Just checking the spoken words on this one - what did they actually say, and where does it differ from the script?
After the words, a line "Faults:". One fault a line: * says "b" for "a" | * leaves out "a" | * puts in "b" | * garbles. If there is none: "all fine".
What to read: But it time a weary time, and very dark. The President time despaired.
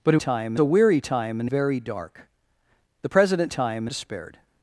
But it time a weary time, and very dark. The President time despaired.
Faults:
all fine